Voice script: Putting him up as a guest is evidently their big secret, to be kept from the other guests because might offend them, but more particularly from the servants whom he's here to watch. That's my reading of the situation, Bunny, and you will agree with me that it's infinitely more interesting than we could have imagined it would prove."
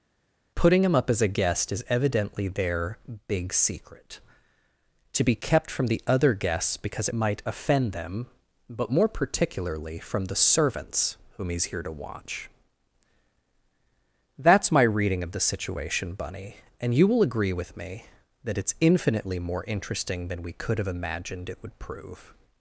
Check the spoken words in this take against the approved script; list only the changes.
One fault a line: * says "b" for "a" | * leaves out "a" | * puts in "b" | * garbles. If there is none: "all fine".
all fine